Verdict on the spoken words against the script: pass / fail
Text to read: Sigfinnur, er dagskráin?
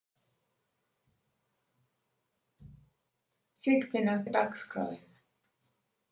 pass